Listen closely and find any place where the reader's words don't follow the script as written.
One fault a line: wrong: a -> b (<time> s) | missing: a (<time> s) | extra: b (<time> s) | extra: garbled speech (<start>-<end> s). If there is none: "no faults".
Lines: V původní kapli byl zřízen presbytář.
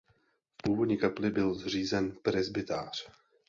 no faults